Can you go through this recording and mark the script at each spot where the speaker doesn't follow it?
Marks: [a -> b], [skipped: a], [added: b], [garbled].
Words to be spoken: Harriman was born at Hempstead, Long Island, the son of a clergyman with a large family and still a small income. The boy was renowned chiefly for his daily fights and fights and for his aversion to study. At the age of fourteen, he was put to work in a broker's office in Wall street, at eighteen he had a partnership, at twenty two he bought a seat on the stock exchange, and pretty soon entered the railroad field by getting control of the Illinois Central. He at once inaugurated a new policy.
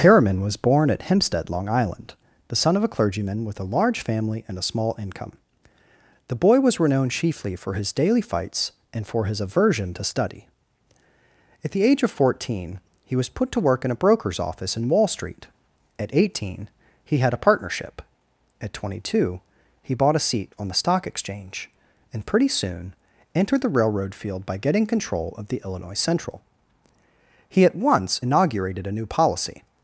Harriman was born at Hempstead, Long Island, the son of a clergyman with a large family and [skipped: still] a small income. The boy was renowned chiefly for his daily fights and [skipped: fights and] for his aversion to study. At the age of fourteen, he was put to work in a broker's office in Wall street, at eighteen he had a partnership, at twenty two he bought a seat on the stock exchange, and pretty soon entered the railroad field by getting control of the Illinois Central. He at once inaugurated a new policy.